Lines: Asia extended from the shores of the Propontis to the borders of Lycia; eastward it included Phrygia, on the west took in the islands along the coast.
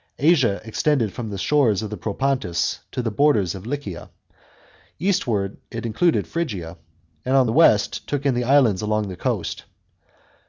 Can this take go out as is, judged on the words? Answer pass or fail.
fail